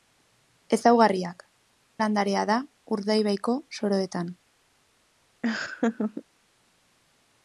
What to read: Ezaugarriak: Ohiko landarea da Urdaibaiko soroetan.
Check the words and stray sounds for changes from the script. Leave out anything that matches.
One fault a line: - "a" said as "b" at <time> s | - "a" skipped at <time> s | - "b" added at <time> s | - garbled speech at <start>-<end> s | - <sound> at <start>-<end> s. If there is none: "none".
- "Ohiko" skipped at 1.4 s
- laugh at 5.4-6.2 s